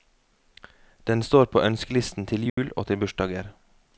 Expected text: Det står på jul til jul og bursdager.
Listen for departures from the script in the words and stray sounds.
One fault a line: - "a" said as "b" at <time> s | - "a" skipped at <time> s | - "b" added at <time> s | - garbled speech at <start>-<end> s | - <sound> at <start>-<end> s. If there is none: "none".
- "Det" said as "Den" at 1.1 s
- "jul" said as "ønskelisten" at 1.6 s
- dropout at 2.5-2.6 s
- "til" added at 2.9 s